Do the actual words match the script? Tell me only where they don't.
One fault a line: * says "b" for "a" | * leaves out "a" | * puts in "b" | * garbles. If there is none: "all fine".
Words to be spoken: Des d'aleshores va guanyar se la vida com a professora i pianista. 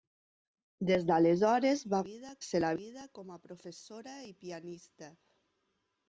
* says "vida" for "guanyar"